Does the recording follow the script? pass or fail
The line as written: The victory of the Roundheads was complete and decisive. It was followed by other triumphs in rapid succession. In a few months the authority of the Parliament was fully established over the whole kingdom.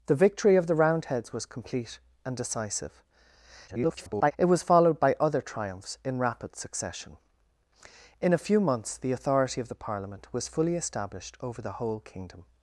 fail